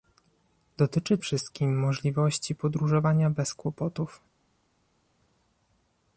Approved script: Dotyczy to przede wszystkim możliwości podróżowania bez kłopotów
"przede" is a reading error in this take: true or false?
true